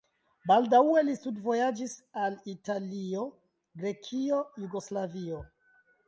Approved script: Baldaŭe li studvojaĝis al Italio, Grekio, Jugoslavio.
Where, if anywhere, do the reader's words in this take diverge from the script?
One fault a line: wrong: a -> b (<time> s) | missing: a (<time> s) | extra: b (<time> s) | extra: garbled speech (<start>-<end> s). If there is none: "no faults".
no faults